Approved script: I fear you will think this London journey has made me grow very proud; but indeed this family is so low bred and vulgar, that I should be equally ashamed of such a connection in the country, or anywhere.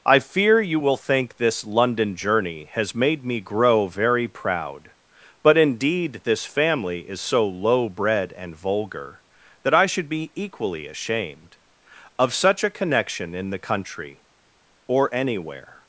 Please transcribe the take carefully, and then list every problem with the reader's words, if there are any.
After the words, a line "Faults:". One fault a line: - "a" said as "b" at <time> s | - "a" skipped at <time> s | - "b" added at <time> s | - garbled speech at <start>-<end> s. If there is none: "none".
I fear you will think this London journey has made me grow very proud; but indeed this family is so low bred and vulgar, that I should be equally ashamed of such a connection in the country, or anywhere.
Faults:
none